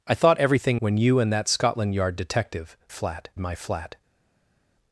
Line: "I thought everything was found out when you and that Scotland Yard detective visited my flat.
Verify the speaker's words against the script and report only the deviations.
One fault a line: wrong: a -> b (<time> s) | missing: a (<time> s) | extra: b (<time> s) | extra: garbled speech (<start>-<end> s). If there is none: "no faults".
missing: was found out (0.8 s)
wrong: visited -> flat (2.9 s)